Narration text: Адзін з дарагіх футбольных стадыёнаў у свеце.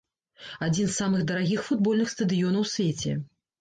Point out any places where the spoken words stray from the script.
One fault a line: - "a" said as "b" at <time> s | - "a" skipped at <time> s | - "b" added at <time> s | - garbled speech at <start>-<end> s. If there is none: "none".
- "самых" added at 1.0 s